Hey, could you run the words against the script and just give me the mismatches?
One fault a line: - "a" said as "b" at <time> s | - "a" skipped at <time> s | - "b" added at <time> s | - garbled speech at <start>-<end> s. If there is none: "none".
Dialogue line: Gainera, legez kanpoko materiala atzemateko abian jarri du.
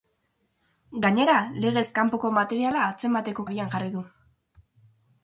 none